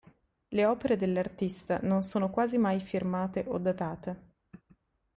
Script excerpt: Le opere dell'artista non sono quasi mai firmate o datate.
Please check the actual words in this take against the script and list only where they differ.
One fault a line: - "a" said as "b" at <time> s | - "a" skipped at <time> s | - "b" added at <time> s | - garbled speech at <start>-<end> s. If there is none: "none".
none